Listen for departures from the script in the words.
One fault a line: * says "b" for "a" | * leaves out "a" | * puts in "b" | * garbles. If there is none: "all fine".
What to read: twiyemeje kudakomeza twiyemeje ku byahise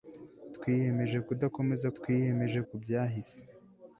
all fine